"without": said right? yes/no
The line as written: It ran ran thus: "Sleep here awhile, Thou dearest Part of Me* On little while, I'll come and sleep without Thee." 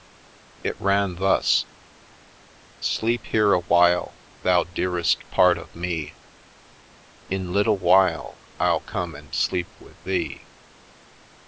no